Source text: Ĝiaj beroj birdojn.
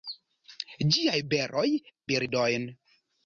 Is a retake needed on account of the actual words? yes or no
no